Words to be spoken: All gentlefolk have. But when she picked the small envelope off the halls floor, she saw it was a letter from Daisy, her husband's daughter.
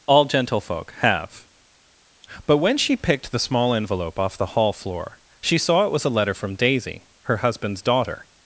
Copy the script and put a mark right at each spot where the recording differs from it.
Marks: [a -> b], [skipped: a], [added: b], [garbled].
All gentlefolk have. But when she picked the small envelope off the [halls -> hall] floor, she saw it was a letter from Daisy, her husband's daughter.